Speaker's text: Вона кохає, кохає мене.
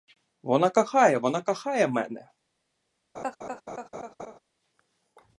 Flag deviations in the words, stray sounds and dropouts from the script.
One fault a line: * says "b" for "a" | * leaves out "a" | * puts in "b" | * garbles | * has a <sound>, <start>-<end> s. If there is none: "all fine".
* puts in "вона"
* has a laugh, 3.1-4.4 s